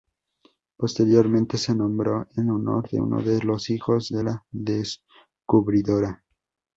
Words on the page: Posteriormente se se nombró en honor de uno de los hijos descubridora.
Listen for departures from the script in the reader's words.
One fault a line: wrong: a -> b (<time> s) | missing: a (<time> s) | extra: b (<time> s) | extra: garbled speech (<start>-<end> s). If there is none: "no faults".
missing: se (1.8 s)
extra: de la (4.1 s)